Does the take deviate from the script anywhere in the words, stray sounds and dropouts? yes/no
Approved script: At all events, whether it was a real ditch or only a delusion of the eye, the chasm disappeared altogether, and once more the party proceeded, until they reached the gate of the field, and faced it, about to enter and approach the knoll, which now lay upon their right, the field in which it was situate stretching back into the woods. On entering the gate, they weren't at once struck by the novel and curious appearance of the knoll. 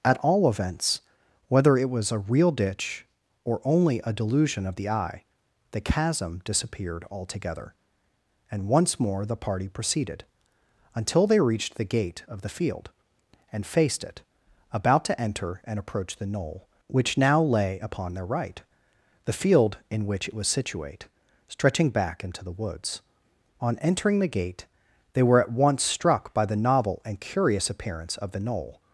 yes